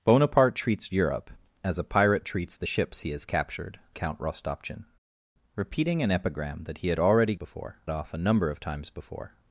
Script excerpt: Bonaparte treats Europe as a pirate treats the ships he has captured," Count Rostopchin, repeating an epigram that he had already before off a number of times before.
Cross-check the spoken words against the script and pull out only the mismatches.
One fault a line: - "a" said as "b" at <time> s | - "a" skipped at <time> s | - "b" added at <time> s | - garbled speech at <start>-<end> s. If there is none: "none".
none